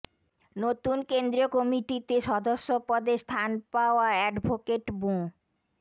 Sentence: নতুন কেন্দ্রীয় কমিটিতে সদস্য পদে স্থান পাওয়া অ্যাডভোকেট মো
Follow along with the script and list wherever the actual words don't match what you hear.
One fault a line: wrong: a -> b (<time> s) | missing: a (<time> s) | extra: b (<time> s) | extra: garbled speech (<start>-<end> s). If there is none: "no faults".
no faults